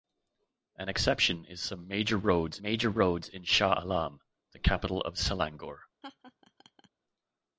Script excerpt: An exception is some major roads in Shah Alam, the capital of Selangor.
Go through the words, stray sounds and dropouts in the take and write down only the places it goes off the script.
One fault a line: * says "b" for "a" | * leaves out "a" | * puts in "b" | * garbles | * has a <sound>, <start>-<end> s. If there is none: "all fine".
* puts in "major roads"
* has a laugh, 6.0-6.9 s